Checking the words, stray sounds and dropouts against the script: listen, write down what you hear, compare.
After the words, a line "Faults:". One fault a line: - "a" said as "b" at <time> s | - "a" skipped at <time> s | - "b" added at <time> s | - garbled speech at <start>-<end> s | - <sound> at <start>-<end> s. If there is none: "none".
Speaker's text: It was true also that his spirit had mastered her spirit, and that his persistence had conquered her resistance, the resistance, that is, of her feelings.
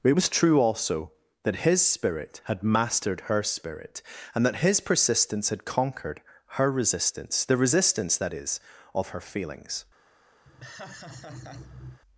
It was true also that his spirit had mastered her spirit, and that his persistence had conquered her resistance, the resistance, that is, of her feelings.
Faults:
- laugh at 10.4-12.0 s